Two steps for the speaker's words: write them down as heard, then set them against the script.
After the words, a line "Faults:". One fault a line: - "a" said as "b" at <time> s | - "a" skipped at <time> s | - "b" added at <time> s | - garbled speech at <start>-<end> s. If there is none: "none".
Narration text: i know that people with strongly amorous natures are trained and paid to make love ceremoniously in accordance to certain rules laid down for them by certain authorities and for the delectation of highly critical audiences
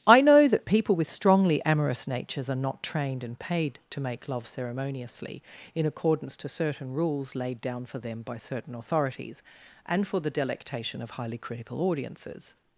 i know that people with strongly amorous natures are not trained and paid to make love ceremoniously in accordance to certain rules laid down for them by certain authorities and for the delectation of highly critical audiences
Faults:
- "not" added at 2.5 s